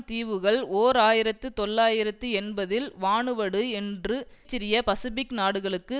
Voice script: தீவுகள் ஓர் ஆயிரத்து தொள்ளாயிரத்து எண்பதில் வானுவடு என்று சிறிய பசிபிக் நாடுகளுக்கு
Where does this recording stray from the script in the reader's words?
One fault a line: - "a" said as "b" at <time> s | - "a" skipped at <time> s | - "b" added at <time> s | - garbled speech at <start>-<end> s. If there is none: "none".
none